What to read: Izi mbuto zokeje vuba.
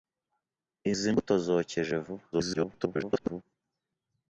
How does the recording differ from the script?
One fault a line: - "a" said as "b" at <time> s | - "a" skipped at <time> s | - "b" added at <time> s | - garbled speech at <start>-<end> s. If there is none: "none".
- garbled speech at 2.3-3.4 s